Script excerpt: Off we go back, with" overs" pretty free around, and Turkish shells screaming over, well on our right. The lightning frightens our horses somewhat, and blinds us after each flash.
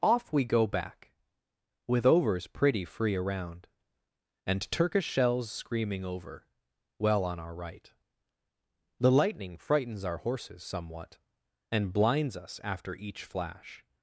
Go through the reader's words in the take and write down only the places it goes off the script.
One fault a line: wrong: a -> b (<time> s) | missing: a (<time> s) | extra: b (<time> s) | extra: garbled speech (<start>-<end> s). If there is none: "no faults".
no faults